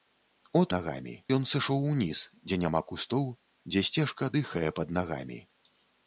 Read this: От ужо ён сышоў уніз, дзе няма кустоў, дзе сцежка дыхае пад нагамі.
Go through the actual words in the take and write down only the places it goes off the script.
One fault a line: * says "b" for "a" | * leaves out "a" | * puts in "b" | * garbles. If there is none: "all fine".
* says "нагамі" for "ужо"